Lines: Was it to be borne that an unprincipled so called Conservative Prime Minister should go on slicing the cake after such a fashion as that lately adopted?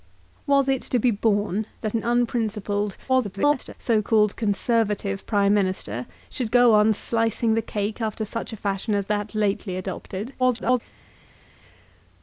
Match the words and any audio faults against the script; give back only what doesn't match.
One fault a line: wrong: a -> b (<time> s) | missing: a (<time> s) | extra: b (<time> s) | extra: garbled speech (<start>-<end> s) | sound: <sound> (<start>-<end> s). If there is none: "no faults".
extra: garbled speech (3.1-3.7 s)
extra: garbled speech (10.4-10.8 s)